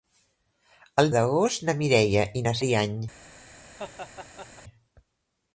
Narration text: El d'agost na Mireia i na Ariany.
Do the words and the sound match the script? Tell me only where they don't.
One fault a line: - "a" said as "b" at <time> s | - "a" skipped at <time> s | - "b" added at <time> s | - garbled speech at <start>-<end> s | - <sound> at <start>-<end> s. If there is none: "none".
- laugh at 3.7-4.6 s